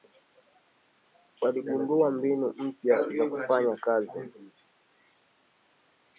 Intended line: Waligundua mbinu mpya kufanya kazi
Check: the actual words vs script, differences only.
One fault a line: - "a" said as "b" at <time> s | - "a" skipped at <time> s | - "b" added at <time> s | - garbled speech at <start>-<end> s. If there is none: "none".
- "za" added at 3.1 s